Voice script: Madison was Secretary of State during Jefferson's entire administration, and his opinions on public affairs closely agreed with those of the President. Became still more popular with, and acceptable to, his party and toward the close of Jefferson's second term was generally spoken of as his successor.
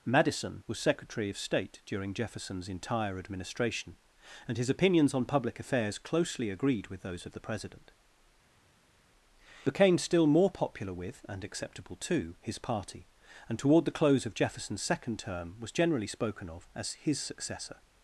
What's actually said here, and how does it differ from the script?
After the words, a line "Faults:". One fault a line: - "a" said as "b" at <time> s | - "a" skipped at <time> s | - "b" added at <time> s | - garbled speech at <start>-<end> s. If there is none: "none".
Madison was Secretary of State during Jefferson's entire administration, and his opinions on public affairs closely agreed with those of the President. Became still more popular with, and acceptable to, his party and toward the close of Jefferson's second term was generally spoken of as his successor.
Faults:
none